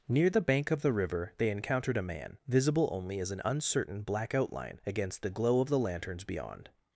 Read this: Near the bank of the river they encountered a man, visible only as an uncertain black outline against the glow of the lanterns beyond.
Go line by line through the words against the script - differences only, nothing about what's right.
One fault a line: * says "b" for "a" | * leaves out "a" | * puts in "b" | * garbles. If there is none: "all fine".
all fine